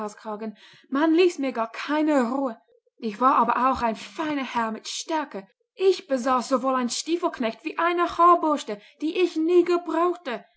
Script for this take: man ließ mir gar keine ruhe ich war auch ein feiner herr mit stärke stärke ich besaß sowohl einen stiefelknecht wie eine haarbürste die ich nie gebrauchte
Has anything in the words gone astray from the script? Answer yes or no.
yes